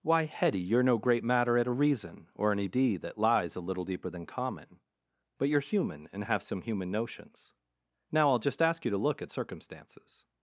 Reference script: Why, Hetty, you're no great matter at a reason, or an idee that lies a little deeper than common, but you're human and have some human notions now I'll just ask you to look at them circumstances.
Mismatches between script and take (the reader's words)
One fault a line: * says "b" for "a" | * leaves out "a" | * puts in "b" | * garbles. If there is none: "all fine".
* leaves out "them"